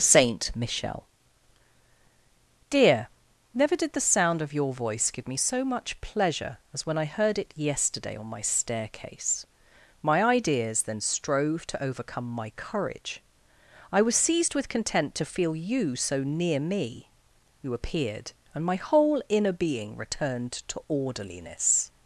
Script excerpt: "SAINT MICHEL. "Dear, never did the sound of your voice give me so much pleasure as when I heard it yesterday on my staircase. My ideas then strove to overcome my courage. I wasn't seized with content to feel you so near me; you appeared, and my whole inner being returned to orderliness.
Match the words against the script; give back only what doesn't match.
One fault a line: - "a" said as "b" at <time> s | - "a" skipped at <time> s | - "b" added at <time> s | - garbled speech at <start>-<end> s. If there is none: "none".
- "wasn't" said as "was" at 14.0 s